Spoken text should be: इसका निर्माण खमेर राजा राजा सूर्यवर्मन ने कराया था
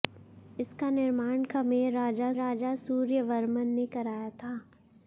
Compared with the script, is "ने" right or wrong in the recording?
right